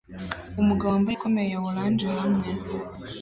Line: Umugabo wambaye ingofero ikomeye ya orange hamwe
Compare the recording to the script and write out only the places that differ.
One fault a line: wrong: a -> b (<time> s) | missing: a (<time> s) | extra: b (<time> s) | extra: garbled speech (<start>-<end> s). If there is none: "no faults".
missing: ingofero (1.2 s)